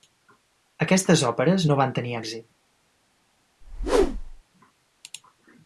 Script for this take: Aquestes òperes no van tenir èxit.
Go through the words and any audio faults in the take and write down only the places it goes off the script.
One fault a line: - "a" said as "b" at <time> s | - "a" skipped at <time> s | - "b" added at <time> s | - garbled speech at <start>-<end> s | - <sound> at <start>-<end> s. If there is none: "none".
- whoosh at 3.6-4.4 s